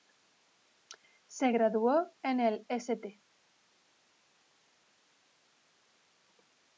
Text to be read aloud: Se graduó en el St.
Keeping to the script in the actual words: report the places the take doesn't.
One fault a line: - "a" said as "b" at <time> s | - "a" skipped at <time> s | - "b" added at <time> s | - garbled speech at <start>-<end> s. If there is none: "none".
none